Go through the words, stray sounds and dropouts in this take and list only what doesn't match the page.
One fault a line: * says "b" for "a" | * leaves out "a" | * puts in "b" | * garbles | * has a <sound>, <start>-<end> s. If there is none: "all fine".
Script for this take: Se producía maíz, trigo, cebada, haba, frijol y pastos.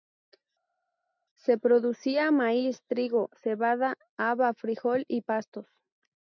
all fine